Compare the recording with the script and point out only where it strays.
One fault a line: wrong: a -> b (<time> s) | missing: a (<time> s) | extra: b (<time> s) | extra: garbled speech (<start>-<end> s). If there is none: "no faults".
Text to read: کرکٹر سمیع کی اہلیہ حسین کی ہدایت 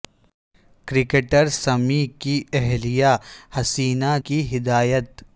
no faults